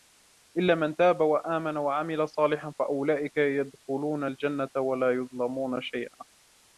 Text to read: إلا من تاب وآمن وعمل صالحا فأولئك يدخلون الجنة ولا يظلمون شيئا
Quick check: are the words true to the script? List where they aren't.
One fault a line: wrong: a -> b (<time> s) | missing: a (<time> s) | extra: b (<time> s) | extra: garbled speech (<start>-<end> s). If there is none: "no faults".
no faults